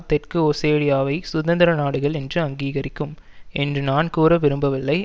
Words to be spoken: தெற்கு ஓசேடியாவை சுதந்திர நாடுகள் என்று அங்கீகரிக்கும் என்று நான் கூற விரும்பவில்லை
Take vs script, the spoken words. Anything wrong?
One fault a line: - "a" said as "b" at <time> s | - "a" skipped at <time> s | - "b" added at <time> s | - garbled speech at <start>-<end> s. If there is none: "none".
none